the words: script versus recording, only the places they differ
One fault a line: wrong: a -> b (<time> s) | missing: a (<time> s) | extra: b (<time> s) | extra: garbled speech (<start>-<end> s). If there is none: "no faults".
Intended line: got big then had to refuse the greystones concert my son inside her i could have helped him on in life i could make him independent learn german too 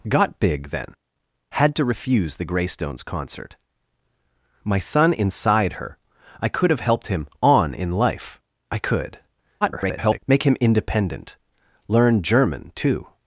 extra: garbled speech (9.6-10.2 s)